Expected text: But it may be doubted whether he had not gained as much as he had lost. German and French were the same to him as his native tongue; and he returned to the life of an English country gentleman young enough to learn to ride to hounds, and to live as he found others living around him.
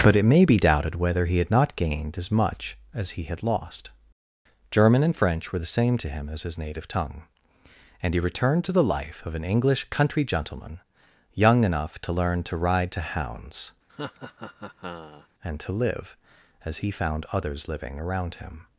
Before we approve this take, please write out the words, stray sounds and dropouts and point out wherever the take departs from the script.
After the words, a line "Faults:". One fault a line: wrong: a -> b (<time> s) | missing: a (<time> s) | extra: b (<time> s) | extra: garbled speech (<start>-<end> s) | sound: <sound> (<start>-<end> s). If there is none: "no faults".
But it may be doubted whether he had not gained as much as he had lost. German and French were the same to him as his native tongue; and he returned to the life of an English country gentleman young enough to learn to ride to hounds, and to live as he found others living around him.
Faults:
sound: laugh (13.9-15.3 s)